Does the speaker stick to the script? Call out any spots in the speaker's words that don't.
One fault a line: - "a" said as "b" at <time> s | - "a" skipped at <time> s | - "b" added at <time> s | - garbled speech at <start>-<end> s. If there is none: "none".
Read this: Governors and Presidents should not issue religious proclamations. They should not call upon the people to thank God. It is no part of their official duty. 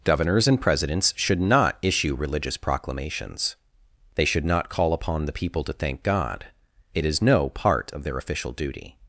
none